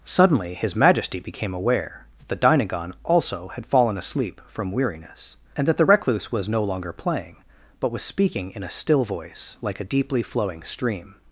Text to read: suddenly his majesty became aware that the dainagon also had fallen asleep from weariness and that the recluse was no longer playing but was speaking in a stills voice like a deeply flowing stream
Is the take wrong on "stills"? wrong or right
wrong